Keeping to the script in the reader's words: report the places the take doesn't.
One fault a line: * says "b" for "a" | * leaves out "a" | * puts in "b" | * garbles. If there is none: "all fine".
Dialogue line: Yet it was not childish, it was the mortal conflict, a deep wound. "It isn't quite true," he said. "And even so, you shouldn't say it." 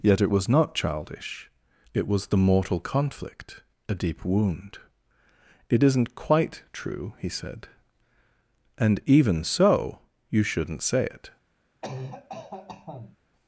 all fine